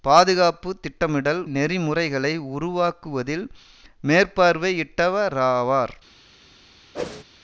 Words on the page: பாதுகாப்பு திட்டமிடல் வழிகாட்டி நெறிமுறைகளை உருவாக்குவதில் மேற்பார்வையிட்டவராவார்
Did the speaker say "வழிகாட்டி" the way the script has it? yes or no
no